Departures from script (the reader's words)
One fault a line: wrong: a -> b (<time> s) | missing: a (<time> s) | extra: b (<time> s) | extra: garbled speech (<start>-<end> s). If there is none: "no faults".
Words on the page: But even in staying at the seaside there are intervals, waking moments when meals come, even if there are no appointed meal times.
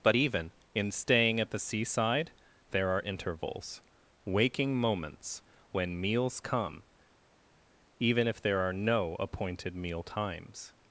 no faults